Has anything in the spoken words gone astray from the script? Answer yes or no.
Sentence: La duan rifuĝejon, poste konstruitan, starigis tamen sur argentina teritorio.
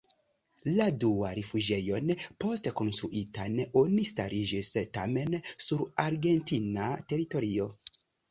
yes